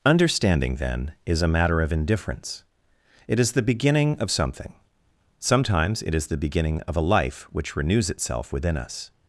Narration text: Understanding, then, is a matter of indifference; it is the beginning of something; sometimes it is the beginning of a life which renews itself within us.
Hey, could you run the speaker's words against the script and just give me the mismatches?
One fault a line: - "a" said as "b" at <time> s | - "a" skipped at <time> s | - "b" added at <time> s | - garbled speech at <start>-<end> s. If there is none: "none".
none